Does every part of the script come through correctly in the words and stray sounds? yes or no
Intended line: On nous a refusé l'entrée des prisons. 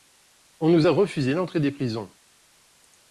yes